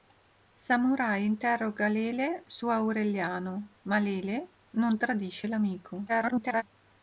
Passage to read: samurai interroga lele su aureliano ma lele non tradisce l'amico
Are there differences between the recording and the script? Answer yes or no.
yes